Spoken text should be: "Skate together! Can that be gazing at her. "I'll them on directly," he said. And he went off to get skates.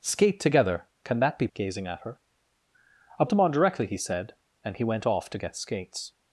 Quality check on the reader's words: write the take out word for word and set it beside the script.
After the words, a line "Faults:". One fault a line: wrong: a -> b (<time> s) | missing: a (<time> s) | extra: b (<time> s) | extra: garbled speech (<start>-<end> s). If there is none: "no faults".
"Skate together! Can that be gazing at her. "I'll them on directly," he said. And he went off to get skates.
Faults:
no faults